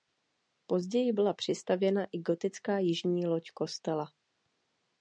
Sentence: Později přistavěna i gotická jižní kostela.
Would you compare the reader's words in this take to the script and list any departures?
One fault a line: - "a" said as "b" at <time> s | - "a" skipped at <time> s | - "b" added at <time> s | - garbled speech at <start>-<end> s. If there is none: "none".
- "byla" added at 1.1 s
- "loď" added at 3.3 s